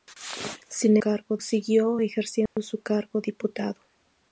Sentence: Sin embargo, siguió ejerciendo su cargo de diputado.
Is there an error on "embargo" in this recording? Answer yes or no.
yes